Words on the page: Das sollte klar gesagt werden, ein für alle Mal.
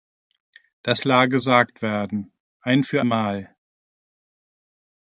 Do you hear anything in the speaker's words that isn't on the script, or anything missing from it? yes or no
yes